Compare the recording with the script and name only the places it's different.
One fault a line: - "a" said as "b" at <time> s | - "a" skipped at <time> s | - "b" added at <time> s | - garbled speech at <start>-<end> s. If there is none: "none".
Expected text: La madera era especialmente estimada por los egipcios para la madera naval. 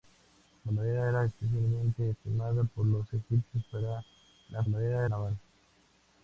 none